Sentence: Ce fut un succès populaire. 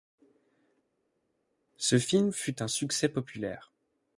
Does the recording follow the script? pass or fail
fail